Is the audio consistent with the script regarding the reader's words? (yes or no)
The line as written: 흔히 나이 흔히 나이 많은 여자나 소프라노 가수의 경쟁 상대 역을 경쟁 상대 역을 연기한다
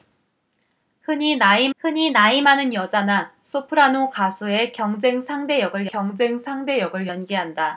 yes